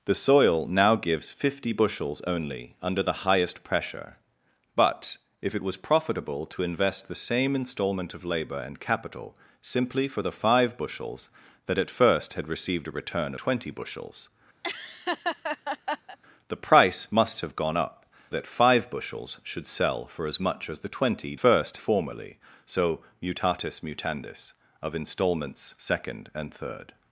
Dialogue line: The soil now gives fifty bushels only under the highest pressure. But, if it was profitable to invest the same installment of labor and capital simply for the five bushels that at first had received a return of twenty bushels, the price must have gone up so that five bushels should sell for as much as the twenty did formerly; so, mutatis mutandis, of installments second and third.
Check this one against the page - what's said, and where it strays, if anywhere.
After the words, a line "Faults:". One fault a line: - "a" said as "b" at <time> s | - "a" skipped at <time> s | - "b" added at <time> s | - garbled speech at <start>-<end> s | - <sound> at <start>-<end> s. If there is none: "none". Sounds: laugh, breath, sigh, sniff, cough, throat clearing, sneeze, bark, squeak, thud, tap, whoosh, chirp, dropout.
The soil now gives fifty bushels only under the highest pressure. But, if it was profitable to invest the same installment of labor and capital simply for the five bushels that at first had received a return twenty bushels, the price must have gone up that five bushels should sell for as much as the twenty first formerly; so, mutatis mutandis, of installments second and third.
Faults:
- "of" skipped at 13.3 s
- laugh at 14.6-16.2 s
- "so" skipped at 18.0 s
- "did" said as "first" at 21.3 s